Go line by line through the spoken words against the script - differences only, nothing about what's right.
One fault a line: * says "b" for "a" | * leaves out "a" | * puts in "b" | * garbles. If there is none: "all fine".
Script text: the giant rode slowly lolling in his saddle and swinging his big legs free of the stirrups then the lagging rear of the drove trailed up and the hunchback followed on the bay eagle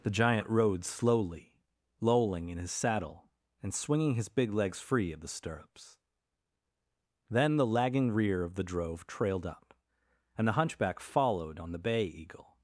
all fine